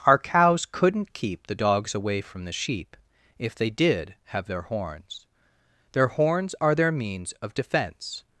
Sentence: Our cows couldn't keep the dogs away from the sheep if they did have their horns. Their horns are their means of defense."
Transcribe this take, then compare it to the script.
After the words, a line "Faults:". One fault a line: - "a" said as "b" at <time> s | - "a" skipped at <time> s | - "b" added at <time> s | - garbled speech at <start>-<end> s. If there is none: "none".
Our cows couldn't keep the dogs away from the sheep if they did have their horns. Their horns are their means of defense."
Faults:
none